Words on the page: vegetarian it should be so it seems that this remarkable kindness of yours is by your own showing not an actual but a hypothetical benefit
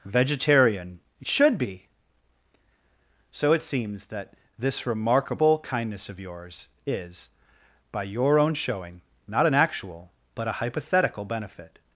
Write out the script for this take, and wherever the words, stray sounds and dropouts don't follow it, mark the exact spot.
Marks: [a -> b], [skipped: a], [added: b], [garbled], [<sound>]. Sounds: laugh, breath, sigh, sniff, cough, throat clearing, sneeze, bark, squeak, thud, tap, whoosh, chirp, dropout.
vegetarian it should be so it seems that this remarkable kindness of yours is by your own showing not an actual but a hypothetical benefit